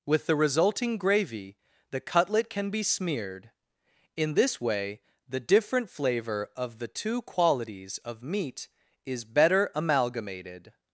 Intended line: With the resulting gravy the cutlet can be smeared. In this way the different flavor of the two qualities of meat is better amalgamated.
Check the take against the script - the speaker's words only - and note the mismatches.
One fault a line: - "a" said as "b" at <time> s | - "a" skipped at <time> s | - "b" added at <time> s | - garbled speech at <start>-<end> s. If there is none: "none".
none